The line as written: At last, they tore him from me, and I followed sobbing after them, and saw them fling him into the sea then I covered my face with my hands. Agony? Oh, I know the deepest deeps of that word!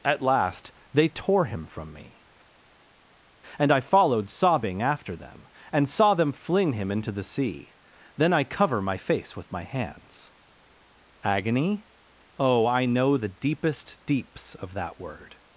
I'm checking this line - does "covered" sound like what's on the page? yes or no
no